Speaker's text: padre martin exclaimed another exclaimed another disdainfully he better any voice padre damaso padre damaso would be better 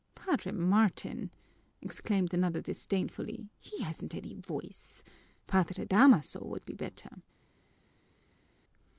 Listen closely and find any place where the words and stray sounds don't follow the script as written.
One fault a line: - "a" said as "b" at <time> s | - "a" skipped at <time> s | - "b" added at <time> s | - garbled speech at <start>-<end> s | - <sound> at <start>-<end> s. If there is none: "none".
- "exclaimed another" skipped at 2.6 s
- "better" said as "hasn't" at 3.8 s
- "padre damaso" skipped at 6.4 s